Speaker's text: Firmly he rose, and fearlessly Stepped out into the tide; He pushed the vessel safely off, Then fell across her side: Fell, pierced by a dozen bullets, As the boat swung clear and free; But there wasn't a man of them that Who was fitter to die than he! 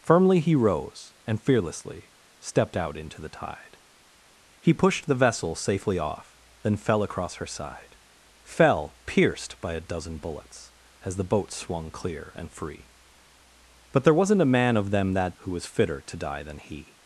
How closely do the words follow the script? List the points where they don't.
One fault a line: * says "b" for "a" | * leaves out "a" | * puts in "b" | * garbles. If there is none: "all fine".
all fine